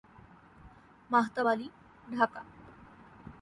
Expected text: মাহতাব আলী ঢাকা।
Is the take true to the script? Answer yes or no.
yes